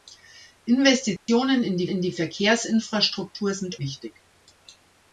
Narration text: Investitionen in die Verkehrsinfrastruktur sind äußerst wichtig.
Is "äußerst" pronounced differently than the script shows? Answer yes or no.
yes